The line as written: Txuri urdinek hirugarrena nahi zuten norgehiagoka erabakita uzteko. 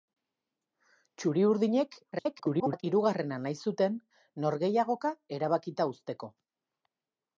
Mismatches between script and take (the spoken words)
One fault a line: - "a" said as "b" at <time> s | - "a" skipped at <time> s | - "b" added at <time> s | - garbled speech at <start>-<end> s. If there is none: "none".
- garbled speech at 2.1-2.8 s